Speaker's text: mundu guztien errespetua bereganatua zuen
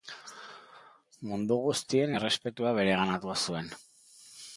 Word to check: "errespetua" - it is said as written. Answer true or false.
true